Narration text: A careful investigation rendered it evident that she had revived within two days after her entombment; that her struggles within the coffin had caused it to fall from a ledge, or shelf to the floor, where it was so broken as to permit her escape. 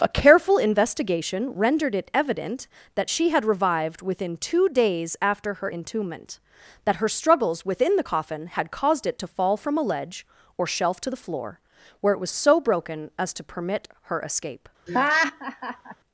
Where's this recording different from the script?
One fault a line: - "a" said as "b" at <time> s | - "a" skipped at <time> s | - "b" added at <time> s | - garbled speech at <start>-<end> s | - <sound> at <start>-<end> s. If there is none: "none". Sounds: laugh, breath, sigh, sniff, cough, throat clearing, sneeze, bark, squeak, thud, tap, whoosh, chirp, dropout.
- laugh at 14.9-16.0 s